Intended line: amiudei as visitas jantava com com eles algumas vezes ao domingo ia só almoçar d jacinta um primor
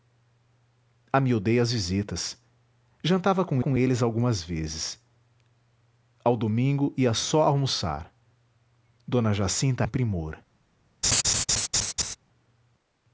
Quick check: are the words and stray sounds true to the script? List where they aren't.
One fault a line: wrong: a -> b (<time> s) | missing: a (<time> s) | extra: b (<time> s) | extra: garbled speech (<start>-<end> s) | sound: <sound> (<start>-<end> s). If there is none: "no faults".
sound: laugh (11.0-12.2 s)